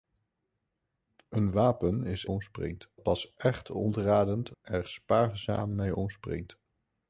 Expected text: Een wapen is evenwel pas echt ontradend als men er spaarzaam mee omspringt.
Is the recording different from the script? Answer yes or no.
yes